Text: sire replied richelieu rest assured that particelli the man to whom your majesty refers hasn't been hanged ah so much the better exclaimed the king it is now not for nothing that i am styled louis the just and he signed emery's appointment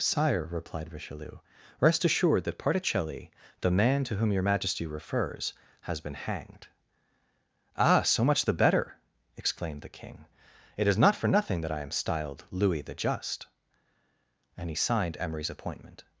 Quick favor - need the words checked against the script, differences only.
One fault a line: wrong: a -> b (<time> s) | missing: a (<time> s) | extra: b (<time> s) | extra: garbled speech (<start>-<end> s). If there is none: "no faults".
wrong: hasn't -> has (5.8 s)
missing: now (11.0 s)